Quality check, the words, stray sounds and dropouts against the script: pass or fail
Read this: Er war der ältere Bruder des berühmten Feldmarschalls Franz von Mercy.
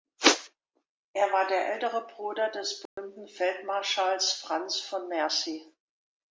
fail